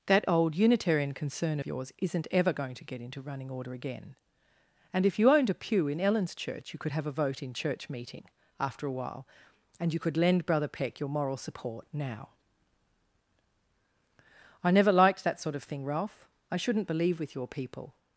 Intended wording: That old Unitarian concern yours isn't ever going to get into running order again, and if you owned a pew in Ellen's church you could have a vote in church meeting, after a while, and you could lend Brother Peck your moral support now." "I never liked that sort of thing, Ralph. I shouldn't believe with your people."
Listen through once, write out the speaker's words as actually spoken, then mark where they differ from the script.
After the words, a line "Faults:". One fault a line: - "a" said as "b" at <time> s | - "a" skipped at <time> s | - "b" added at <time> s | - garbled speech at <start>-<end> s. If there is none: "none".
That old Unitarian concern yours isn't ever going to get into running order again, and if you owned a pew in Ellen's church you could have a vote in church meeting, after a while, and you could lend Brother Peck your moral support now." "I never liked that sort of thing, Ralph. I shouldn't believe with your people."
Faults:
none